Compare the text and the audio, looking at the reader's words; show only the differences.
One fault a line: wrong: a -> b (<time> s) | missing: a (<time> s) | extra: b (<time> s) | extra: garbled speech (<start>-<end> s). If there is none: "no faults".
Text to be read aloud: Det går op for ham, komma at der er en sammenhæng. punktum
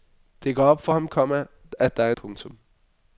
missing: en sammenhæng (2.1 s)